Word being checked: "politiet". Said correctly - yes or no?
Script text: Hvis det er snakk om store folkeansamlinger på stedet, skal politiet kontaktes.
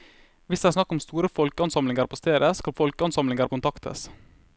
no